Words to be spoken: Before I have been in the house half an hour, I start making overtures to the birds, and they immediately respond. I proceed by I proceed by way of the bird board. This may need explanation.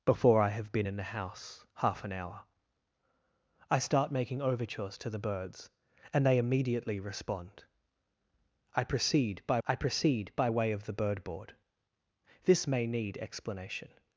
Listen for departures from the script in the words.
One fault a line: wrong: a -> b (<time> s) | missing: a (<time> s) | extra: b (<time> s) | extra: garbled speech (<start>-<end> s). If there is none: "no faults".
no faults